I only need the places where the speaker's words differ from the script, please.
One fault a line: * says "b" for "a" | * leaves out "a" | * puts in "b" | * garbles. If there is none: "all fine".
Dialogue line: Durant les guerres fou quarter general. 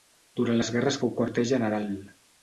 all fine